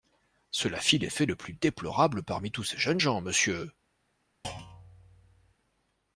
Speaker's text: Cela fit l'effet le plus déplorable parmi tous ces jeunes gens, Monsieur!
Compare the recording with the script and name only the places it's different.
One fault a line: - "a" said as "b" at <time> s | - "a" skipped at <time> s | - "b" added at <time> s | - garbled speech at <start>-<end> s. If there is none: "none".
none